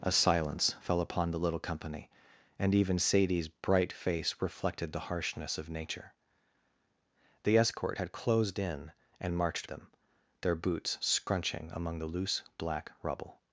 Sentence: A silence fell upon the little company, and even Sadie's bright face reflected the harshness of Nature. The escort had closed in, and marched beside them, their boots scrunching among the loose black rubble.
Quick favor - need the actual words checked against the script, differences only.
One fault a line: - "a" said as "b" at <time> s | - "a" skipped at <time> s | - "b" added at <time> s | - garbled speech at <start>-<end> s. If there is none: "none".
- "beside" skipped at 9.7 s